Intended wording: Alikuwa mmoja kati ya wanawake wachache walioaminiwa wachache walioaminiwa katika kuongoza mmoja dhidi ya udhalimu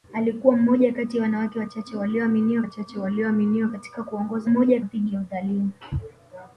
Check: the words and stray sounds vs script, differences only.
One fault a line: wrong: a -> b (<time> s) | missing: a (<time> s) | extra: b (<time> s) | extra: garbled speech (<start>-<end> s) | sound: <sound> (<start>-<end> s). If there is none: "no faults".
no faults